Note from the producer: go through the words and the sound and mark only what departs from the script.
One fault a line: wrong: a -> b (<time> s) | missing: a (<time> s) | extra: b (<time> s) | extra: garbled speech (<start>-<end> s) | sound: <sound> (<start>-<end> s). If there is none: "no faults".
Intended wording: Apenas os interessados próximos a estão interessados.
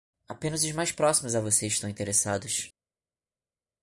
wrong: interessados -> mais (0.7 s)
extra: você (1.4 s)